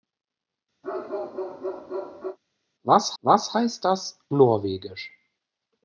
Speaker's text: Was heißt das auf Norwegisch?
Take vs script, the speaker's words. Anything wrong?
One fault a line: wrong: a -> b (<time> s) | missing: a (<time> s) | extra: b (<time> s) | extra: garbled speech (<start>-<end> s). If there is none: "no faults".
extra: was (3.2 s)
missing: auf (4.2 s)